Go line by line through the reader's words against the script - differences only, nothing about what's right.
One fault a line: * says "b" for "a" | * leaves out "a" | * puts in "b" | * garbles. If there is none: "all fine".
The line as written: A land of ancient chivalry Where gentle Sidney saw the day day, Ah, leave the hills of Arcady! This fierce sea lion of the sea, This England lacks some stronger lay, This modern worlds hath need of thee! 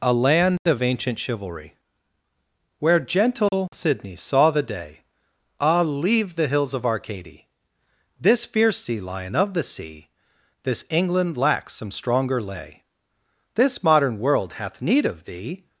* leaves out "day"
* says "world" for "worlds"